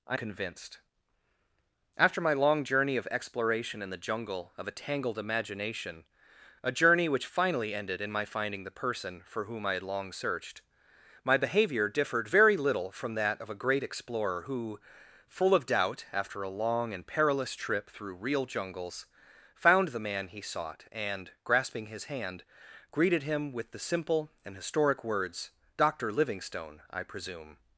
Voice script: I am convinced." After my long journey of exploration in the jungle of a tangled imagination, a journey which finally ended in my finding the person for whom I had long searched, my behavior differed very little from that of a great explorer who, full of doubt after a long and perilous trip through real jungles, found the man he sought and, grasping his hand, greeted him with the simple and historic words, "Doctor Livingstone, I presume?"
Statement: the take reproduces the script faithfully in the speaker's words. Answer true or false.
false